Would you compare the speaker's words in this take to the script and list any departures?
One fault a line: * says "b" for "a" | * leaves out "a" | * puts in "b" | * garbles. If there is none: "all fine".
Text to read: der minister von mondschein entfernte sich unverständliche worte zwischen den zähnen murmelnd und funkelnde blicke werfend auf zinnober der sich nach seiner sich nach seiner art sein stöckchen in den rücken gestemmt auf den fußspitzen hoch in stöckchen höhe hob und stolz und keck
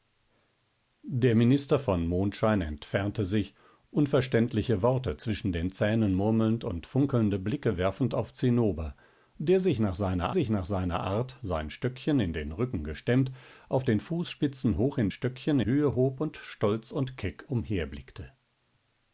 all fine